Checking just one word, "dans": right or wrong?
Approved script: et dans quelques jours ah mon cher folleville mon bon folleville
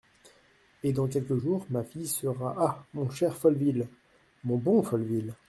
right